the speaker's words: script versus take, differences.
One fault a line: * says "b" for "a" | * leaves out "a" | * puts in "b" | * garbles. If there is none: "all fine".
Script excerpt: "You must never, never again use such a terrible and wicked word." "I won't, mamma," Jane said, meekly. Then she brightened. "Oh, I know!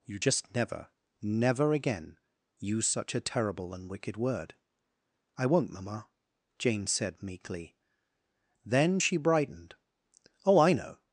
* says "just" for "must"